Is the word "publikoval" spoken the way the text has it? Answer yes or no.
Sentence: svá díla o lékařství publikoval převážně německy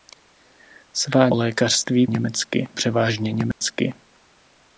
no